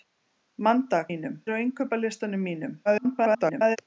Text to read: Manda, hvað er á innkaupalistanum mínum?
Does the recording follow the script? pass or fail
fail